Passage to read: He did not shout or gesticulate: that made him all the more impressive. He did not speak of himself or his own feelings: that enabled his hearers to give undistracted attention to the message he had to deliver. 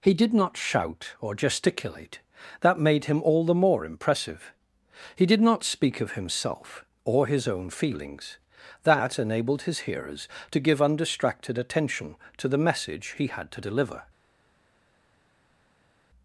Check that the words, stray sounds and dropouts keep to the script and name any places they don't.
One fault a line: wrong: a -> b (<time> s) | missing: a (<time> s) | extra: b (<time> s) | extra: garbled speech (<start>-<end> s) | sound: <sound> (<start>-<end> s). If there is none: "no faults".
no faults